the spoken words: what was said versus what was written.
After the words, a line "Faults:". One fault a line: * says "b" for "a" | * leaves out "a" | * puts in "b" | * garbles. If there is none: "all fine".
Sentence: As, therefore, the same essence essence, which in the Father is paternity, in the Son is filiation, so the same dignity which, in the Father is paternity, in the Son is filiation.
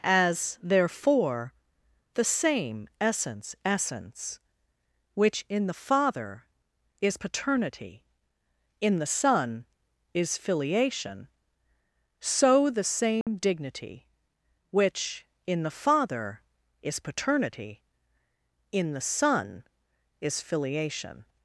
As, therefore, the same essence essence, which in the Father is paternity, in the Son is filiation, so the same dignity which, in the Father is paternity, in the Son is filiation.
Faults:
all fine